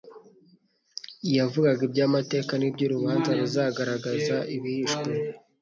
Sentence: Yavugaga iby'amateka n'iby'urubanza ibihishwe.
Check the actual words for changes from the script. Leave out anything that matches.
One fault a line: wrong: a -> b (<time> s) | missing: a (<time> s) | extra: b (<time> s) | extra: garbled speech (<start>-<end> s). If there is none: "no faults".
extra: ruzagaragaza (3.4 s)